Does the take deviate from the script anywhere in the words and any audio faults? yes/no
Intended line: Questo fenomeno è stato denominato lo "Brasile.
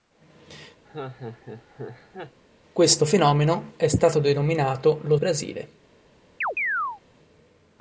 yes